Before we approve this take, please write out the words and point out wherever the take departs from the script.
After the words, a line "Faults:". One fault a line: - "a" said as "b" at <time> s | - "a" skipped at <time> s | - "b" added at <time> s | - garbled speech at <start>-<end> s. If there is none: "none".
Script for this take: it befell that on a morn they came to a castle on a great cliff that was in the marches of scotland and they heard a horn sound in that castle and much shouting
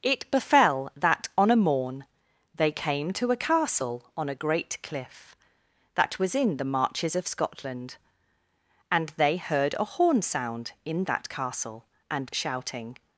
it befell that on a morn they came to a castle on a great cliff that was in the marches of scotland and they heard a horn sound in that castle and shouting
Faults:
- "much" skipped at 12.3 s